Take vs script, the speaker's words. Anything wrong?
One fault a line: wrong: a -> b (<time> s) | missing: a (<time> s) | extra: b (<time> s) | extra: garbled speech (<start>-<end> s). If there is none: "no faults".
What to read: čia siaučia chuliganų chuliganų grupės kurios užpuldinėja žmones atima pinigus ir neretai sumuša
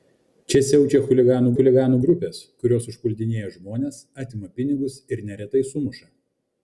no faults